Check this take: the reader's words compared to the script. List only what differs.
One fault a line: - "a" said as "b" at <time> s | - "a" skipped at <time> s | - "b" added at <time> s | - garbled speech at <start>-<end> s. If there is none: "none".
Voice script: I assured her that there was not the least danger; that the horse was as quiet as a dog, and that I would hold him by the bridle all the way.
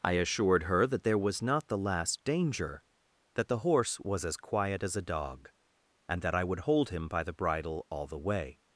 - "least" said as "last" at 1.8 s